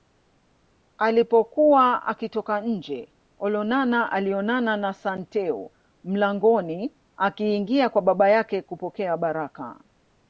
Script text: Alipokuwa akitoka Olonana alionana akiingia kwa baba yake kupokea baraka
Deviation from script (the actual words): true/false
true